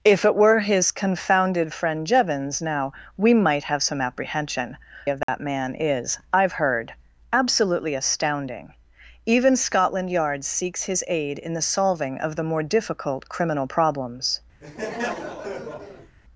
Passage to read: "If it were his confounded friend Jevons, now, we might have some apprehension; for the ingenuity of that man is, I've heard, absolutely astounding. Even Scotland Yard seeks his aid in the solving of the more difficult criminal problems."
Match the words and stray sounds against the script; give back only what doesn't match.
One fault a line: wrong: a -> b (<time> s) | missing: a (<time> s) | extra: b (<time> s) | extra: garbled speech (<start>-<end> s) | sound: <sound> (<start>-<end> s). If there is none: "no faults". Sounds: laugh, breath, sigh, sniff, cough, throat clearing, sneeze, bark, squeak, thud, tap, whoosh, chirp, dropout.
missing: for the ingenuity (4.8 s)
sound: dropout (5.2-5.3 s)
sound: laugh (14.6-16.2 s)